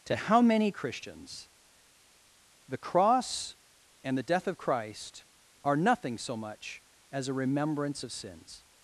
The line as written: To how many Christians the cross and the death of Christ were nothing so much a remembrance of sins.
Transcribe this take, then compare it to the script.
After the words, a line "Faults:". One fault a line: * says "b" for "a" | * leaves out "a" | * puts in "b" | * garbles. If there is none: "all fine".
To how many Christians the cross and the death of Christ are nothing so much as a remembrance of sins.
Faults:
* says "are" for "were"
* puts in "as"